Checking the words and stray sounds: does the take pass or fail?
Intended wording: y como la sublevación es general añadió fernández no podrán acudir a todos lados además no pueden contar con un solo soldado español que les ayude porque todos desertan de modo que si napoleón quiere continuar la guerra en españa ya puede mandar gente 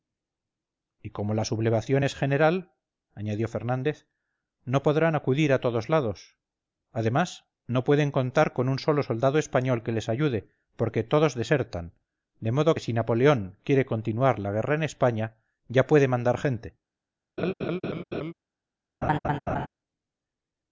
fail